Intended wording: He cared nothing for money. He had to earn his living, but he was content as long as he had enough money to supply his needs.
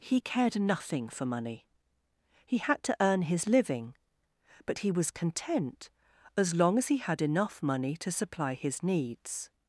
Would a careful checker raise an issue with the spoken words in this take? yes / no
no